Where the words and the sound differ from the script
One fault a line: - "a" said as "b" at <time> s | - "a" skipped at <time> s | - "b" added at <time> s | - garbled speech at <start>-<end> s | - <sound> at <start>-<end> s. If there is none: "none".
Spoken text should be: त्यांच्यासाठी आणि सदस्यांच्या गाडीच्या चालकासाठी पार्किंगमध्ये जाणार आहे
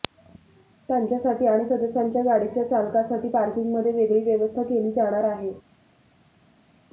- "वेगळी व्यवस्था केली" added at 3.9 s